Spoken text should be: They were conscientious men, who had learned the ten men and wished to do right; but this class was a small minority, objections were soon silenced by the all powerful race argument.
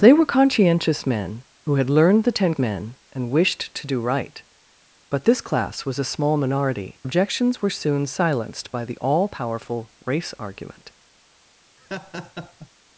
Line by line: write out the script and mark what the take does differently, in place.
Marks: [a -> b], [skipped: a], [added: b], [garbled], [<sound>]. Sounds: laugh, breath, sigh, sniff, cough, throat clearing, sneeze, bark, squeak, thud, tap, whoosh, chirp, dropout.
They were conscientious men, who had learned the ten men and wished to do right; but this class was a small minority, objections were soon silenced by the all powerful race argument. [laugh]